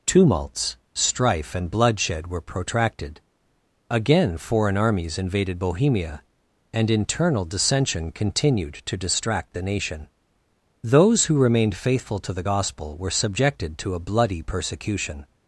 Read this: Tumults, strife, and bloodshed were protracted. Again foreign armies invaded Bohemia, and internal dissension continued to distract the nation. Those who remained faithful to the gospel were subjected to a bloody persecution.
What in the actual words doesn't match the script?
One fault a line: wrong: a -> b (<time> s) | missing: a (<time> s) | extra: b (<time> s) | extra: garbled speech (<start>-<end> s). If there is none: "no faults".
no faults